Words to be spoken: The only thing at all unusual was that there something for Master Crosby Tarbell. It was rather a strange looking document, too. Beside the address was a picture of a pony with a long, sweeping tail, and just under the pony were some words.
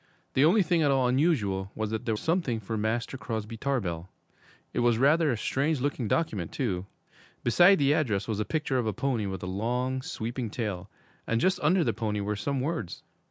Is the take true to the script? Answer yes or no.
yes